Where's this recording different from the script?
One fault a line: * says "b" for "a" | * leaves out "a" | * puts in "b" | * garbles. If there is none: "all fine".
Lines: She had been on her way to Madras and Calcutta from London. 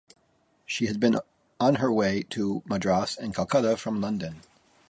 all fine